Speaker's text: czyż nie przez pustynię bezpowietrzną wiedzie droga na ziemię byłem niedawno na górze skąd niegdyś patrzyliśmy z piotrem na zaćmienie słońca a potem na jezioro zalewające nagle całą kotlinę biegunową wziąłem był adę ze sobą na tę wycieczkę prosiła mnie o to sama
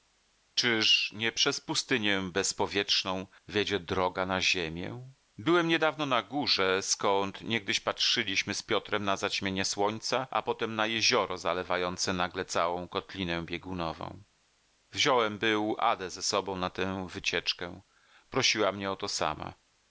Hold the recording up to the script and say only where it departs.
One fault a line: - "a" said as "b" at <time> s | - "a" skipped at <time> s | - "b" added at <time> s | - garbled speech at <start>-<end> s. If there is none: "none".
none